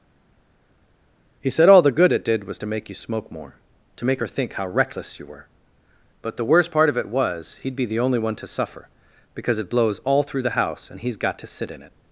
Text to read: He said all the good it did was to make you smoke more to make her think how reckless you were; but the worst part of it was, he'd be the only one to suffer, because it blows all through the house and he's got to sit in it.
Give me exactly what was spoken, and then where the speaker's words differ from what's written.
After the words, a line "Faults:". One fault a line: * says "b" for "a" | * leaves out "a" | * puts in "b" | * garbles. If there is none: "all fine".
He said all the good it did was to make you smoke more to make her think how reckless you were; but the worst part of it was, he'd be the only one to suffer, because it blows all through the house and he's got to sit in it.
Faults:
all fine